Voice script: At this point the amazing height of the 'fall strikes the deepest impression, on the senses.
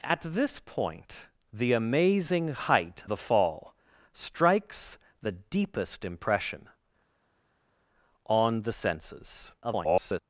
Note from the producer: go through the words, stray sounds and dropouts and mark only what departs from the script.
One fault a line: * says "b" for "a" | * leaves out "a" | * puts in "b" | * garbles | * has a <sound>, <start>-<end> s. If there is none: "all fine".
* leaves out "of"
* garbles